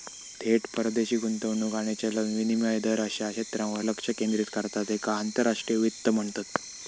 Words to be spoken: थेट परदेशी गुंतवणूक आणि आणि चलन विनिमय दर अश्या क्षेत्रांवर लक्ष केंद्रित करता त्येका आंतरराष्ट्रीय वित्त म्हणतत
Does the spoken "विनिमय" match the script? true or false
true